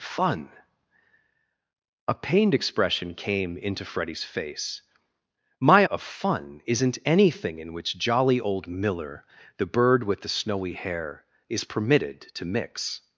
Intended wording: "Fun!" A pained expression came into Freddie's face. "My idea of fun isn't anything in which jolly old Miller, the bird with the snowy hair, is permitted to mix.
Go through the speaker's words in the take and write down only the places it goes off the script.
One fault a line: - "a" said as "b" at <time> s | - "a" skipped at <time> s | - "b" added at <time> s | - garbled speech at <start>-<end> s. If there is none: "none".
- "idea" skipped at 5.9 s